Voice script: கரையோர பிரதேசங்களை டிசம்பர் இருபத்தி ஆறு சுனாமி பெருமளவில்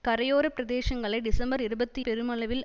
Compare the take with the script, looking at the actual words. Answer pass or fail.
fail